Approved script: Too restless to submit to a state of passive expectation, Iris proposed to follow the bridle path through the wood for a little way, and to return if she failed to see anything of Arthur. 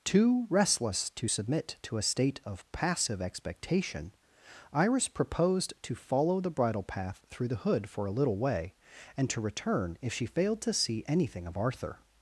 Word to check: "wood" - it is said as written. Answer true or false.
false